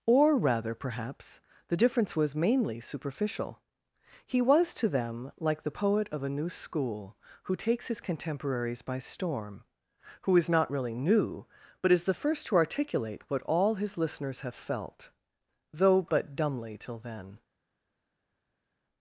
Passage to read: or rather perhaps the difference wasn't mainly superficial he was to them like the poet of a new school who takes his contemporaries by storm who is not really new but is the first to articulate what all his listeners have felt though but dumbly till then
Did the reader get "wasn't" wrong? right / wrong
wrong